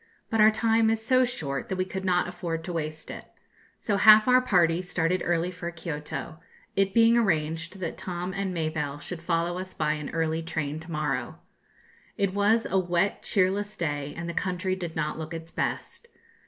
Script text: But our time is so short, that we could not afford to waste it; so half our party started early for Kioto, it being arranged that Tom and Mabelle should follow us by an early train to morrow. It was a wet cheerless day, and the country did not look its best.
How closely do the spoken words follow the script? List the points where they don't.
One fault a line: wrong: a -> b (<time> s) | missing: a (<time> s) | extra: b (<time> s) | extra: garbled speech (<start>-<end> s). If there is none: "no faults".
no faults